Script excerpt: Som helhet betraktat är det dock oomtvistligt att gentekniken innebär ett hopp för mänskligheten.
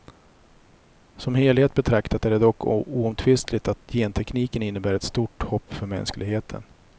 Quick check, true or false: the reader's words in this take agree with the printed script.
false